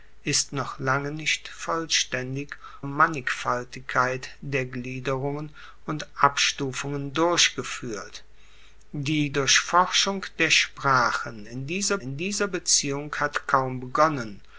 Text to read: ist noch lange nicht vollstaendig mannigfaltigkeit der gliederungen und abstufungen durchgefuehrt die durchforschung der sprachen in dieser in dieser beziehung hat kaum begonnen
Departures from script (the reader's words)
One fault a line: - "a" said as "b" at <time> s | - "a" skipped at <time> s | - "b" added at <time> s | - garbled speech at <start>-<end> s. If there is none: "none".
none